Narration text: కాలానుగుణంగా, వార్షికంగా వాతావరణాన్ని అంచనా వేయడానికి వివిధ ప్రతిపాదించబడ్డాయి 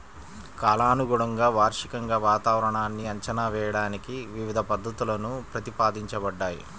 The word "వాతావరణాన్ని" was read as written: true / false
true